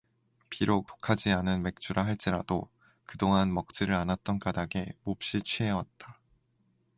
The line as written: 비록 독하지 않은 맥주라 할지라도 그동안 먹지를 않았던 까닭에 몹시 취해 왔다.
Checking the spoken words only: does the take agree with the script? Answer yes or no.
yes